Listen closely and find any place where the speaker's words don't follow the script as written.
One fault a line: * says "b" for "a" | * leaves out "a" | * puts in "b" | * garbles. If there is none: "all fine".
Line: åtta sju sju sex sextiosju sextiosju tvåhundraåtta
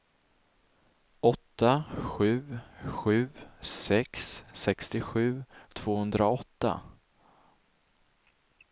* leaves out "sextiosju"